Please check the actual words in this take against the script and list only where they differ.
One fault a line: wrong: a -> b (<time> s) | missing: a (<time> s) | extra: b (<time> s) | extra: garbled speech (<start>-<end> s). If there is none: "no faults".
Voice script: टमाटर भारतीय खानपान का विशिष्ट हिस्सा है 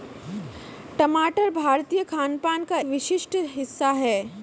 no faults